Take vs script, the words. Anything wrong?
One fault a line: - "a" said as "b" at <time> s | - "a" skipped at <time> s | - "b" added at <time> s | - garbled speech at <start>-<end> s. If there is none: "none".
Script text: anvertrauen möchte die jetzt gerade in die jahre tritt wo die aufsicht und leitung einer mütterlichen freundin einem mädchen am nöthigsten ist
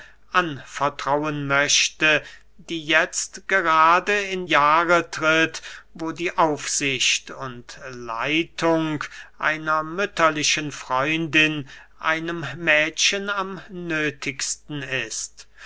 - "die" skipped at 4.5 s